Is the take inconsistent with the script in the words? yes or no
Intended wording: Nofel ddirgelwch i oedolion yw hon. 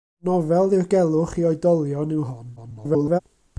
yes